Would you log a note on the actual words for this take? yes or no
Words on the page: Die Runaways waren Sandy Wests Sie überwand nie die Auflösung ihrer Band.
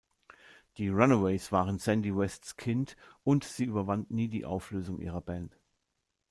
yes